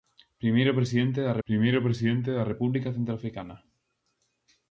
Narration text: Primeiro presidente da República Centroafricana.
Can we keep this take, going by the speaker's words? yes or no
no